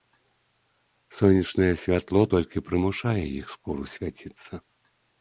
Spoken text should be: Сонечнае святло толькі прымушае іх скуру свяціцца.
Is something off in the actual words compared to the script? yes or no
no